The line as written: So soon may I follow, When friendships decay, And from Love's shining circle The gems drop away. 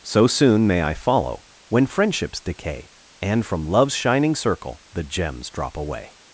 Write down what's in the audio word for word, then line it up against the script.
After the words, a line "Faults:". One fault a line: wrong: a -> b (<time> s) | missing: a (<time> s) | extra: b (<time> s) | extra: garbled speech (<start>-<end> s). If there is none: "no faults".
So soon may I follow, When friendships decay, And from Love's shining circle The gems drop away.
Faults:
no faults